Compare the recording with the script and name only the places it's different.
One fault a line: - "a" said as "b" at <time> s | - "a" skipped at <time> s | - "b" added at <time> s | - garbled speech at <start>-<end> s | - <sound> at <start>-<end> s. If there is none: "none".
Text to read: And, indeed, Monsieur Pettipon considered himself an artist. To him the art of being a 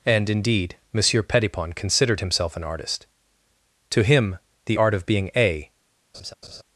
- laugh at 6.1-6.6 s